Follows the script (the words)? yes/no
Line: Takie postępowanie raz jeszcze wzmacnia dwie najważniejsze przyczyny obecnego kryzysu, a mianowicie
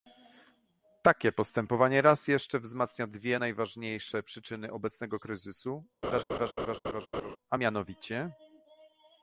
yes